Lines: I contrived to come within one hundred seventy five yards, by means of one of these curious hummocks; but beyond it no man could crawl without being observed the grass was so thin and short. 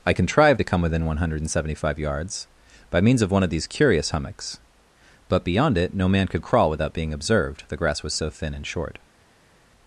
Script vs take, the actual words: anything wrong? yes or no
no